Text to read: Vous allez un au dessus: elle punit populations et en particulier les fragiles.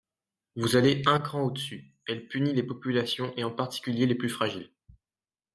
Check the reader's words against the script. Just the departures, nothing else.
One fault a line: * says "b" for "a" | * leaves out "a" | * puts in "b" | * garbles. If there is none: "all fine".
* puts in "cran"
* puts in "les"
* puts in "plus"